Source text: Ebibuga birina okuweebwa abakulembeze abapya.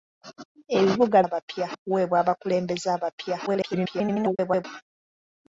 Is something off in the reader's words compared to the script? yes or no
yes